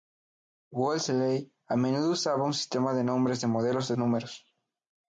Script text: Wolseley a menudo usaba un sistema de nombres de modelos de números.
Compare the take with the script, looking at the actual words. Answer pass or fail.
pass